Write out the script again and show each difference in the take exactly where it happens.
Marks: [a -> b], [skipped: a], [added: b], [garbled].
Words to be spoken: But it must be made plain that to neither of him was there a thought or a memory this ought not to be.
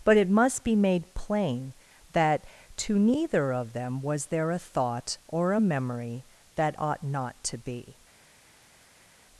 But it must be made plain that to neither of [him -> them] was there a thought or a memory [this -> that] ought not to be.